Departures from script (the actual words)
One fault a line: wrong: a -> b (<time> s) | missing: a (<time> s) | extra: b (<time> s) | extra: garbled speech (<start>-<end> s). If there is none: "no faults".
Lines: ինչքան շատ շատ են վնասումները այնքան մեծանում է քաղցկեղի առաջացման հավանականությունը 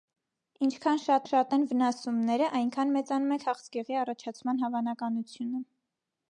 no faults